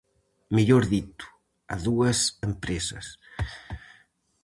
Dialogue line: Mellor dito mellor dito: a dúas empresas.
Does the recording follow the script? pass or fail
fail